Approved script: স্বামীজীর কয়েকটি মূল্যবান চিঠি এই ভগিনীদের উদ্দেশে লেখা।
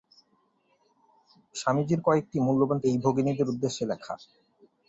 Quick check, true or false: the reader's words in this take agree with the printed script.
false